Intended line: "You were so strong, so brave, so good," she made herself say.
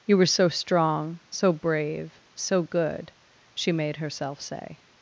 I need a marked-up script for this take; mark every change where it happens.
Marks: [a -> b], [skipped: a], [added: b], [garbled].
"You were so strong, so brave, so good," she made herself say.